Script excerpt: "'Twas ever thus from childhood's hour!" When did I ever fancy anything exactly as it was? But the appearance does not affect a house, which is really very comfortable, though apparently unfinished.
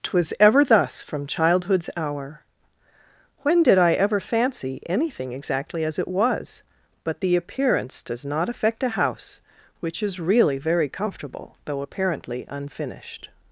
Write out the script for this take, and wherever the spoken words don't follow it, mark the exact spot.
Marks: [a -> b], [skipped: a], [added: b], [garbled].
"'Twas ever thus from childhood's hour!" When did I ever fancy anything exactly as it was? But the appearance does not affect a house, which is really very comfortable, though apparently unfinished.